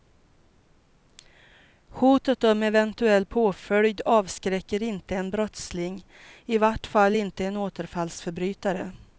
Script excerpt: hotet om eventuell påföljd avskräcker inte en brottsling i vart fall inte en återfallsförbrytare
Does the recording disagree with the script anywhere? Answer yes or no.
no